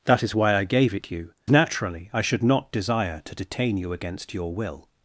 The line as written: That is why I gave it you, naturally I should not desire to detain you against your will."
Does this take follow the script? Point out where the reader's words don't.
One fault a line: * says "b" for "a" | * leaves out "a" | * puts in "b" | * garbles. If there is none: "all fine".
all fine